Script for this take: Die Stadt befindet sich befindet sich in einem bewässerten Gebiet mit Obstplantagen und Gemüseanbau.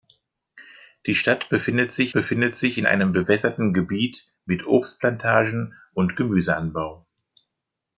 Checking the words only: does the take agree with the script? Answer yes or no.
yes